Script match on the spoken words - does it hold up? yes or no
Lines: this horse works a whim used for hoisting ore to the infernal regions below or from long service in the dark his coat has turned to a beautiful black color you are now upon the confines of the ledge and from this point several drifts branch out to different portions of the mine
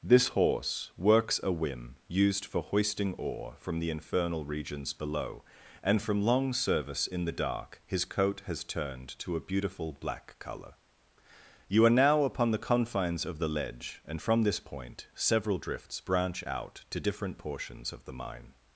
no